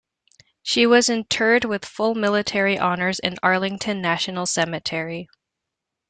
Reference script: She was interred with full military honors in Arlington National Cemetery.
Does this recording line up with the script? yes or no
yes